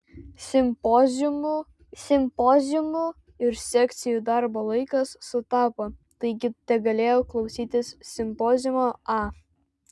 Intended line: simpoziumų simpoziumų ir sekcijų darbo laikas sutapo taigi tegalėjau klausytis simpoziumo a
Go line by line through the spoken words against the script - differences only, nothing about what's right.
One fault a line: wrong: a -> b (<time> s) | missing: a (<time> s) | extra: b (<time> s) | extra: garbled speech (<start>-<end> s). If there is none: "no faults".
no faults